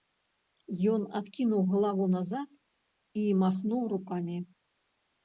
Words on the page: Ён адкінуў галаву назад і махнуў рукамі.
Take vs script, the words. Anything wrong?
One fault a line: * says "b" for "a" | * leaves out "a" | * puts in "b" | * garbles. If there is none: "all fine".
all fine